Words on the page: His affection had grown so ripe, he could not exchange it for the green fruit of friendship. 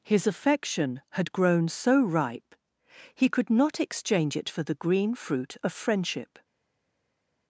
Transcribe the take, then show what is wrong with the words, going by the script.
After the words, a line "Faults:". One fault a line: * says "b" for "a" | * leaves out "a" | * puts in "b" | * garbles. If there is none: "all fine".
His affection had grown so ripe, he could not exchange it for the green fruit of friendship.
Faults:
all fine